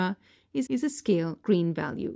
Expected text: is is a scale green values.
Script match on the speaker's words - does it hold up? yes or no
yes